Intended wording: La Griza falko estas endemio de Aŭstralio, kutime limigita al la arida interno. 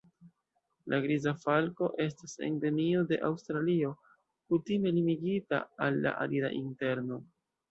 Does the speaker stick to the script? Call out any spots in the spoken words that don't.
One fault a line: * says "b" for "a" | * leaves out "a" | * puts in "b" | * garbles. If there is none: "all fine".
all fine